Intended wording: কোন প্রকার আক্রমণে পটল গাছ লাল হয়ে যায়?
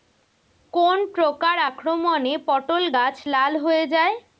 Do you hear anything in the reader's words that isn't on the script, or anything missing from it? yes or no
no